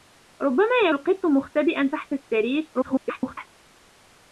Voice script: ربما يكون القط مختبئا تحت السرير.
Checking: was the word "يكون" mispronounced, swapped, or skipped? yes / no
yes